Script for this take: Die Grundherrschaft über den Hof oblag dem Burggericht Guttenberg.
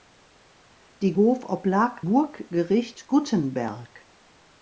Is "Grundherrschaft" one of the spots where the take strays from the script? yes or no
yes